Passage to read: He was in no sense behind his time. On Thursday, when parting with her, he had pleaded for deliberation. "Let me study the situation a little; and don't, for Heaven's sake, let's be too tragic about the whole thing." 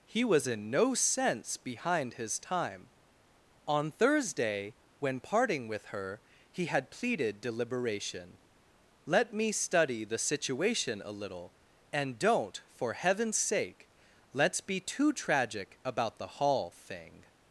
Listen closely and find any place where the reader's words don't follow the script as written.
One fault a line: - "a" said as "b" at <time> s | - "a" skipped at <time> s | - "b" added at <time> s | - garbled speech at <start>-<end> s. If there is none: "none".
- "for" skipped at 7.4 s
- "whole" said as "hall" at 16.3 s